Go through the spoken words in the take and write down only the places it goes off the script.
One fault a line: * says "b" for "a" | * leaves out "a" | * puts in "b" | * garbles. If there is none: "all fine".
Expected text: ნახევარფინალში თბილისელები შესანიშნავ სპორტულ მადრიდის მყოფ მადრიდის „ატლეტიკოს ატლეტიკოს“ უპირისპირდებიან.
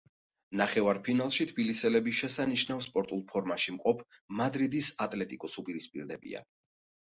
* says "ფორმაში" for "მადრიდის"
* leaves out "ატლეტიკოს"